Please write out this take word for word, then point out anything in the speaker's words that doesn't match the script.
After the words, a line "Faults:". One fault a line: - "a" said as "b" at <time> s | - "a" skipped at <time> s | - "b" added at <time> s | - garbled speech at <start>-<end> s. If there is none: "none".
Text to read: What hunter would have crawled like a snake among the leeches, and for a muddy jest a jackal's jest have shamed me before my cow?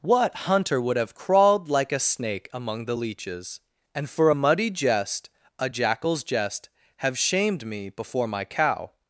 What hunter would have crawled like a snake among the leeches, and for a muddy jest a jackal's jest have shamed me before my cow?
Faults:
none